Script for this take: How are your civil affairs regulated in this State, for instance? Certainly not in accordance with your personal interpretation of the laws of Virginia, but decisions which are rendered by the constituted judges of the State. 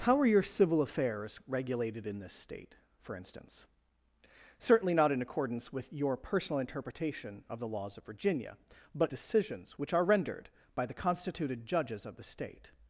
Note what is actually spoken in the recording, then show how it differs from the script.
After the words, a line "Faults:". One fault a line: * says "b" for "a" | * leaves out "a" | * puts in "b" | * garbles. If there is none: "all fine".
How are your civil affairs regulated in this State, for instance? Certainly not in accordance with your personal interpretation of the laws of Virginia, but decisions which are rendered by the constituted judges of the State.
Faults:
all fine